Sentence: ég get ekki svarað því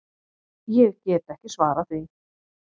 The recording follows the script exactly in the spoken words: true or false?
true